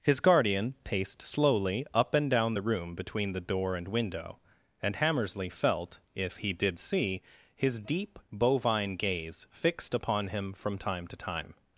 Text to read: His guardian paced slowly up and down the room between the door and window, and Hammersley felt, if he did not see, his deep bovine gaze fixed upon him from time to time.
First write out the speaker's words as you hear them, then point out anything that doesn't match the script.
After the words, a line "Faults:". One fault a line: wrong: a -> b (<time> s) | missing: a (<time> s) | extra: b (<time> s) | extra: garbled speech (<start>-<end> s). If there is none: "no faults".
His guardian paced slowly up and down the room between the door and window, and Hammersley felt, if he did see, his deep bovine gaze fixed upon him from time to time.
Faults:
missing: not (6.8 s)